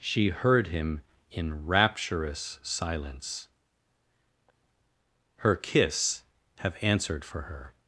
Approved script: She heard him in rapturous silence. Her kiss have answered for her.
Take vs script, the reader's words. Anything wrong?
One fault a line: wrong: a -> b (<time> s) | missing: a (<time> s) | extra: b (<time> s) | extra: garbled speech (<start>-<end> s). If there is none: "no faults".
no faults